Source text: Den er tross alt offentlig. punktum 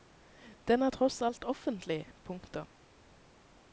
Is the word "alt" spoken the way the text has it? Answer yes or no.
yes